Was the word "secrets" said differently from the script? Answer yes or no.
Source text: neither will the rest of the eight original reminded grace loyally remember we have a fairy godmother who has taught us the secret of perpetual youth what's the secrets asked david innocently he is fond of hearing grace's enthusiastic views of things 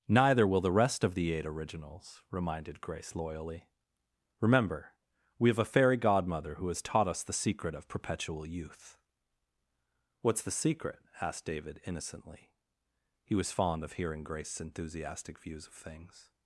yes